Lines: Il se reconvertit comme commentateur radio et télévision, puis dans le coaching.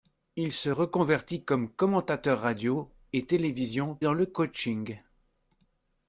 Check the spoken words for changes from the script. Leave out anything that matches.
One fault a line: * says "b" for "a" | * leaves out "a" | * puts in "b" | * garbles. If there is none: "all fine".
* leaves out "puis"